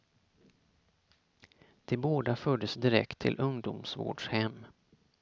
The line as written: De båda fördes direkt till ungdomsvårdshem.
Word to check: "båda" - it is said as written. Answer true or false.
true